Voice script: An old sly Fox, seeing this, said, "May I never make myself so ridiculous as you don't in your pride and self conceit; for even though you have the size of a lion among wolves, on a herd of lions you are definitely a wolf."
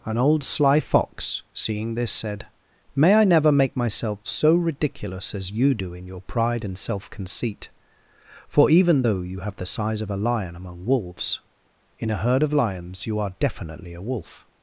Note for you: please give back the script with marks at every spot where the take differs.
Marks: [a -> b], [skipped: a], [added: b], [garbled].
An old sly Fox, seeing this, said, "May I never make myself so ridiculous as you [don't -> do] in your pride and self conceit; for even though you have the size of a lion among wolves, [on -> in] a herd of lions you are definitely a wolf."